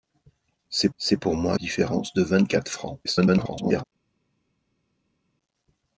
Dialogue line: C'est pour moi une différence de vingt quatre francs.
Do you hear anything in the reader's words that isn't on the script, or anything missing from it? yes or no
yes